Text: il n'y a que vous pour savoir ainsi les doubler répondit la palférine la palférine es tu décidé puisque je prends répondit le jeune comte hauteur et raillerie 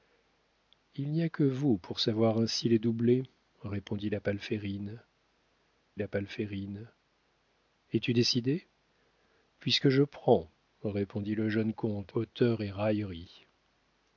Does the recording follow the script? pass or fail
pass